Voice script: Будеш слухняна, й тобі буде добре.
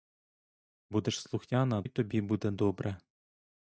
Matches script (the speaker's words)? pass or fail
pass